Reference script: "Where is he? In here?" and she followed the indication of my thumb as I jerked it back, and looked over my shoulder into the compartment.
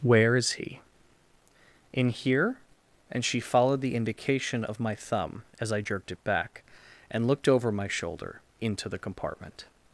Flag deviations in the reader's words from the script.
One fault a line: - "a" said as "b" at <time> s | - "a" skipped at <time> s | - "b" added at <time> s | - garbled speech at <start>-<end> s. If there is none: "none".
none